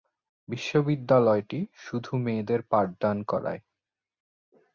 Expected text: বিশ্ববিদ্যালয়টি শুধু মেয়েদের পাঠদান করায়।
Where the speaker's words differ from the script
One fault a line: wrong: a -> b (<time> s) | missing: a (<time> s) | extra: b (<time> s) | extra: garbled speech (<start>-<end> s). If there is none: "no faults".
no faults